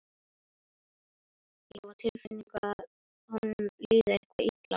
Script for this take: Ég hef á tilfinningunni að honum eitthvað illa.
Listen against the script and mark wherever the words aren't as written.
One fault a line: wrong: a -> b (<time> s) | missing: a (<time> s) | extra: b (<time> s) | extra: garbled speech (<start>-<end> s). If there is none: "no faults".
extra: líði (3.9 s)